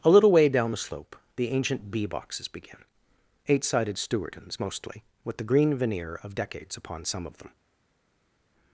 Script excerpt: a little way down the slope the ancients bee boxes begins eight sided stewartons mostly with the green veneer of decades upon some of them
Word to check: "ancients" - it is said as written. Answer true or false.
false